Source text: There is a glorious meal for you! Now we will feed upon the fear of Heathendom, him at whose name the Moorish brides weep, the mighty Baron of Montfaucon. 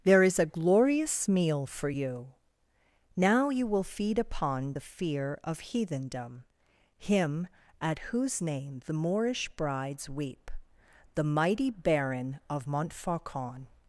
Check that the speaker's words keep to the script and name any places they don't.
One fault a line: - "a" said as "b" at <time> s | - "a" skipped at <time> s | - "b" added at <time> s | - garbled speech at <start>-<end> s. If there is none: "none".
- "we" said as "you" at 3.5 s